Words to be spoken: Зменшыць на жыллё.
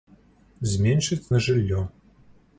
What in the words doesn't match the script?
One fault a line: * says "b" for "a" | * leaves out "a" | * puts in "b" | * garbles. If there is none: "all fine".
all fine